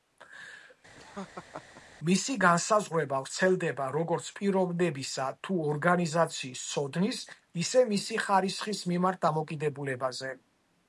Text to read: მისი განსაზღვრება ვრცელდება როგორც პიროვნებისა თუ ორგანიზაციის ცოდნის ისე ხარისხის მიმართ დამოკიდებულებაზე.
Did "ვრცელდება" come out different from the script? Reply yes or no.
no